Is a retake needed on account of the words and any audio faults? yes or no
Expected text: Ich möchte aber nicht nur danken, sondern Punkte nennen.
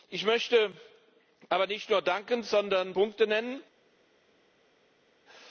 no